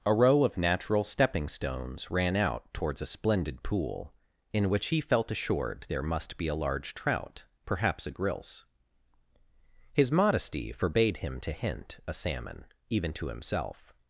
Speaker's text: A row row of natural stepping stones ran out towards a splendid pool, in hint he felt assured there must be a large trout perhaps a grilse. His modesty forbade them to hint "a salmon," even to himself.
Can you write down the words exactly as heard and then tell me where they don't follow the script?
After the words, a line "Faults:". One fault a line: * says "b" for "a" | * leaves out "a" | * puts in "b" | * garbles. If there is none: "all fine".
A row of natural stepping stones ran out towards a splendid pool, in which he felt assured there must be a large trout perhaps a grilse. His modesty forbade him to hint "a salmon," even to himself.
Faults:
* leaves out "row"
* says "which" for "hint"
* says "him" for "them"